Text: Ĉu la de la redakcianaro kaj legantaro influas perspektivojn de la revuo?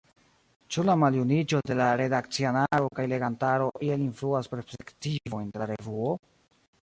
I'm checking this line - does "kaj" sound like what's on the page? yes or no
yes